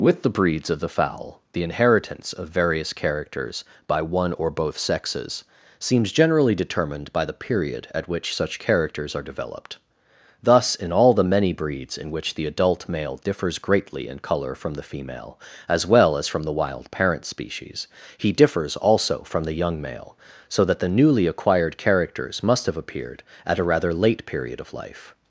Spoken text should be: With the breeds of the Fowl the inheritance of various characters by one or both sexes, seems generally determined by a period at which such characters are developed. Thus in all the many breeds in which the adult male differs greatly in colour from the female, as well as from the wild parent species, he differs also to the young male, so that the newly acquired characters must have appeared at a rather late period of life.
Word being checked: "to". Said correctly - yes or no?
no